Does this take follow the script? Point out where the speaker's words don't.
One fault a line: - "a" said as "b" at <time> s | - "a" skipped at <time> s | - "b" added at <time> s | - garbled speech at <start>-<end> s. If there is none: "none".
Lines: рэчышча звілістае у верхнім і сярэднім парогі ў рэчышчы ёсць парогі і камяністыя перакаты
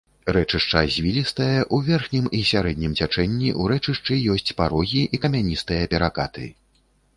- "парогі" said as "цячэнні" at 3.0 s